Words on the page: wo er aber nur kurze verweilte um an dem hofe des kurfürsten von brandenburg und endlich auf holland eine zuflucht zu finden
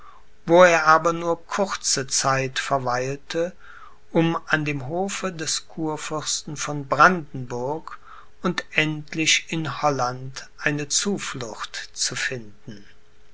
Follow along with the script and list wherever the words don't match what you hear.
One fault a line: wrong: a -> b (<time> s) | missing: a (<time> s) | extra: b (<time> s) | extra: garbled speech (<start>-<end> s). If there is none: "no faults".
extra: zeit (2.1 s)
wrong: auf -> in (9.5 s)